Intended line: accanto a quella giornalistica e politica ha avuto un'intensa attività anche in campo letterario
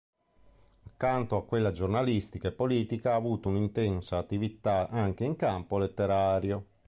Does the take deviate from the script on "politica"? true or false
false